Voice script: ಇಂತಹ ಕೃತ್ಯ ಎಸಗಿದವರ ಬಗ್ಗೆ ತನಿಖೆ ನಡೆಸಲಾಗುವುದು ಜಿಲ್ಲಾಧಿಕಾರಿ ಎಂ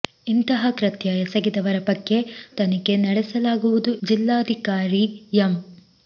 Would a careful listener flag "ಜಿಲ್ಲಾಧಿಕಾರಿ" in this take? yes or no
no